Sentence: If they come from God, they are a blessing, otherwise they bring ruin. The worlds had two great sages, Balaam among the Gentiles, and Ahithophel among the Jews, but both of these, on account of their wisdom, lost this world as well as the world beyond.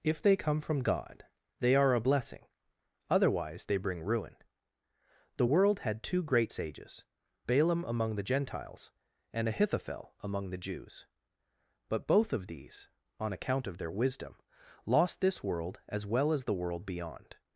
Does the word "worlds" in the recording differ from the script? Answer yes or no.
yes